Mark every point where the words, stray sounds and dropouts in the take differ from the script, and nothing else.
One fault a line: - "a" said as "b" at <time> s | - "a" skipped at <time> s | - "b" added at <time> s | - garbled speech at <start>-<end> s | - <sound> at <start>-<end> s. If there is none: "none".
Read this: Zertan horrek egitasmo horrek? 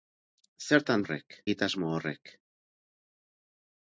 none